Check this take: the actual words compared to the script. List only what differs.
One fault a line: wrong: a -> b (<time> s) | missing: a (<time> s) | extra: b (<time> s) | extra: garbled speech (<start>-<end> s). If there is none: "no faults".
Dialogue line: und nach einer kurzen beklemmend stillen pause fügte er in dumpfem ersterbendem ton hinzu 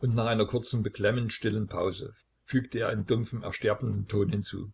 no faults